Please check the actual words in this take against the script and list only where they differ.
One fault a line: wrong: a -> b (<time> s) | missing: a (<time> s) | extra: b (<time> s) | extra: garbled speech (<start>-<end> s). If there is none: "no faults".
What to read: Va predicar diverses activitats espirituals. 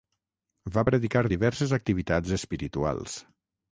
no faults